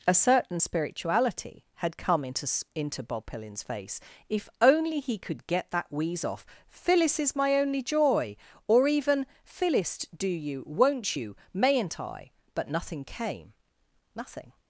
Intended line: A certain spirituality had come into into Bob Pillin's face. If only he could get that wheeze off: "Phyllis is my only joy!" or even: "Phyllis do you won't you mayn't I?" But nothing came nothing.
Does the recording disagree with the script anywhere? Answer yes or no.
no